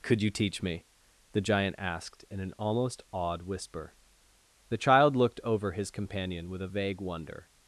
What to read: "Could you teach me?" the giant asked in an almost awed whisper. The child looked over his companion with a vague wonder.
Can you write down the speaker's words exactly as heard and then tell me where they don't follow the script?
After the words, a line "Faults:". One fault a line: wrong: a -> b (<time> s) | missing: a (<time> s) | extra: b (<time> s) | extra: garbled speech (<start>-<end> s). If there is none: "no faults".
"Could you teach me?" the giant asked in an almost awed whisper. The child looked over his companion with a vague wonder.
Faults:
no faults